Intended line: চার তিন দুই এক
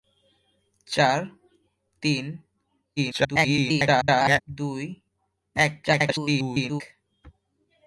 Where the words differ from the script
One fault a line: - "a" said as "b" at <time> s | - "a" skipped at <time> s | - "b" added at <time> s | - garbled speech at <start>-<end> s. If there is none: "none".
- garbled speech at 3.0-4.4 s
- garbled speech at 5.8-6.8 s